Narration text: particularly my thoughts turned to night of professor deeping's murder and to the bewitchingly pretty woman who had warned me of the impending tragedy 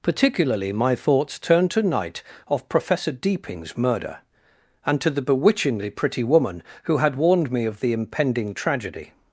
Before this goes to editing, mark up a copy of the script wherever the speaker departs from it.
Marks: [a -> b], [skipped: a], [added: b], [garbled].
particularly my thoughts turned to night of professor deeping's murder and to the bewitchingly pretty woman who had warned me of the impending tragedy